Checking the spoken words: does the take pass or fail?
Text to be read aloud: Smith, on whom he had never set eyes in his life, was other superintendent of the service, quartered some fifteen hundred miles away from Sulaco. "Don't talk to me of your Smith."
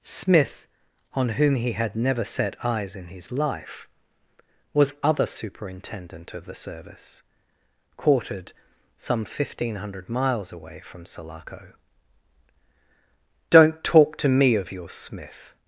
pass